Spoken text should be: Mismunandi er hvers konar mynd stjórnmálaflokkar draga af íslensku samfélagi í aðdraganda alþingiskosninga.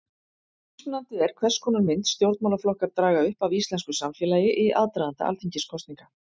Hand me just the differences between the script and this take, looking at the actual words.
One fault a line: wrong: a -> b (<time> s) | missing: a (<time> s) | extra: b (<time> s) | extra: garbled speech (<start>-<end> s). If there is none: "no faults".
extra: upp (3.3 s)